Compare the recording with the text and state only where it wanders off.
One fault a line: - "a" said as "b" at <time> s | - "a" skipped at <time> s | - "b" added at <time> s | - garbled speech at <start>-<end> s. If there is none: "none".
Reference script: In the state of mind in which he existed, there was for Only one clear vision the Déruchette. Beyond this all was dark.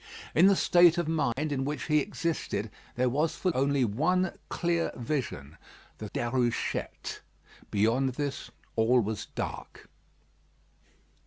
none